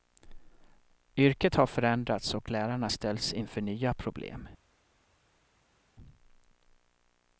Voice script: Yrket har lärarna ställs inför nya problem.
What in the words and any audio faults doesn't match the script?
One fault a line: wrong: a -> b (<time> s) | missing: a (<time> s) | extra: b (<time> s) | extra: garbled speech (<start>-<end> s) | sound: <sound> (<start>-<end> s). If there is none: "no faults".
extra: förändrats och (1.7 s)